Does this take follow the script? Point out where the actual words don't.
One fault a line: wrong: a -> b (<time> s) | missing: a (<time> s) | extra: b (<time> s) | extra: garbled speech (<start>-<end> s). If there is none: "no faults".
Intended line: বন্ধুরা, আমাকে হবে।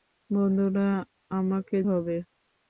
no faults